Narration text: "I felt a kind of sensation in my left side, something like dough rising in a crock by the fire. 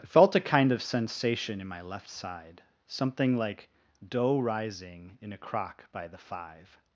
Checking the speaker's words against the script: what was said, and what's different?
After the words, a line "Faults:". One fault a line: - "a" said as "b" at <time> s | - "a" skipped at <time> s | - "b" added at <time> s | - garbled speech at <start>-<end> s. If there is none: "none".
"I felt a kind of sensation in my left side, something like dough rising in a crock by the five.
Faults:
- "fire" said as "five" at 6.2 s